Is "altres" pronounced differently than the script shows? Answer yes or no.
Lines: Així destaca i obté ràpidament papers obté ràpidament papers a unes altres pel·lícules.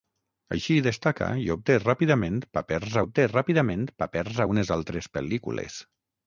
no